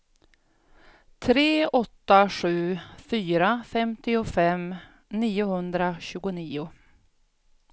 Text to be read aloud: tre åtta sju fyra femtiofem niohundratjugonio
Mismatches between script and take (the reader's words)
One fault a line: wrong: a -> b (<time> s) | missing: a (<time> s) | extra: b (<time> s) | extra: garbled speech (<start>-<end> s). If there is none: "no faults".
no faults